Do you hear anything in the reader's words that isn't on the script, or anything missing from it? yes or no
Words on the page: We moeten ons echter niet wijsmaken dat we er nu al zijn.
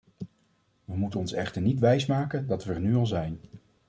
no